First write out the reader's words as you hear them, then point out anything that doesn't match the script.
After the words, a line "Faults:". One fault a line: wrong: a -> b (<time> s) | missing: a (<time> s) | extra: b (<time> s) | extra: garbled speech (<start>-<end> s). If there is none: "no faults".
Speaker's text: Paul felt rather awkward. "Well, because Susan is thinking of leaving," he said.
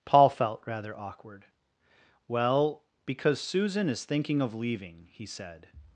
Paul felt rather awkward. "Well, because Susan is thinking of leaving," he said.
Faults:
no faults